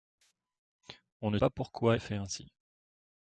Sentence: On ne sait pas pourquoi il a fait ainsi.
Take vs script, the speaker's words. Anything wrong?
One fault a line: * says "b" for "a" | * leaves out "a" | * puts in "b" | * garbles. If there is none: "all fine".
* leaves out "sait"
* leaves out "il"